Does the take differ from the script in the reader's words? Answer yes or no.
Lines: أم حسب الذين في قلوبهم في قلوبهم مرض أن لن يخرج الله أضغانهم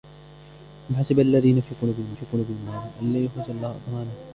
no